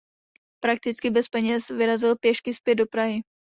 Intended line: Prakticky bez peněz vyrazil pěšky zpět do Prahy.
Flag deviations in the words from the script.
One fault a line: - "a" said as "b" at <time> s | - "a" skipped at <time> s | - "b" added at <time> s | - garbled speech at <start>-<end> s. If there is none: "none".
none